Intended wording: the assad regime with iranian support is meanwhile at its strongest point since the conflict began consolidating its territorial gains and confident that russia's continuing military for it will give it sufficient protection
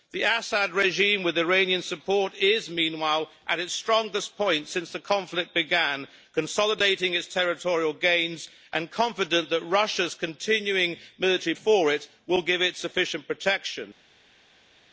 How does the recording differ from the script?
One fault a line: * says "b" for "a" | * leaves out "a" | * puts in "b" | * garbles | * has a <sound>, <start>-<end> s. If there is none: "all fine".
all fine